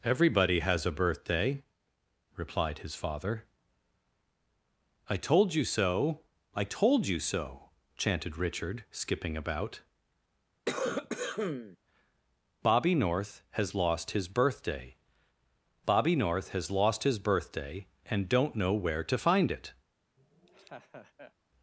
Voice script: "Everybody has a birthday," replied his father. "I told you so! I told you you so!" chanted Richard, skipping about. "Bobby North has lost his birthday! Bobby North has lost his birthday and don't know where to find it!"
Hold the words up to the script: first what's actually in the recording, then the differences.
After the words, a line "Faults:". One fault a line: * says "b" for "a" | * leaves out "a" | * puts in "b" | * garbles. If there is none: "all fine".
"Everybody has a birthday," replied his father. "I told you so! I told you so!" chanted Richard, skipping about. "Bobby North has lost his birthday! Bobby North has lost his birthday and don't know where to find it!"
Faults:
* leaves out "you"